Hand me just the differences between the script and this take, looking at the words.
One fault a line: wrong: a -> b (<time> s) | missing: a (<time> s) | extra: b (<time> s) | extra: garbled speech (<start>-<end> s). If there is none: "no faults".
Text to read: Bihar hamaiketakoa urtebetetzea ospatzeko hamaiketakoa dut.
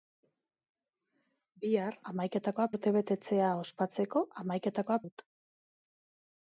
no faults